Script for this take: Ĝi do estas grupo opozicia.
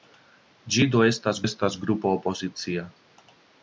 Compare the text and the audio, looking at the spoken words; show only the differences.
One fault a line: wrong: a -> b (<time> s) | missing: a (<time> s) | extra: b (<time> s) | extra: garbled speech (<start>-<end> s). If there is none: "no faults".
extra: estas (1.4 s)